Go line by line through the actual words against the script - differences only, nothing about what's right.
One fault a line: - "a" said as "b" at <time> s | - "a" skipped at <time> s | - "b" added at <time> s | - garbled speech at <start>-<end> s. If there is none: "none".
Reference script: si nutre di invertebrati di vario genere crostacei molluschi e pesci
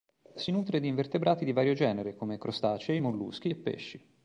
- "come" added at 2.1 s